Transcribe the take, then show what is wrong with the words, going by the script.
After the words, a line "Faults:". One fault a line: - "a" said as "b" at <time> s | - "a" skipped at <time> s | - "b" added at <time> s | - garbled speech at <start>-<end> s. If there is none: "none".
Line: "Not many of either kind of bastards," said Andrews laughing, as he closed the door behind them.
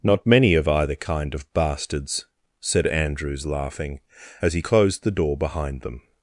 "Not many of either kind of bastards," said Andrews laughing, as he closed the door behind them.
Faults:
none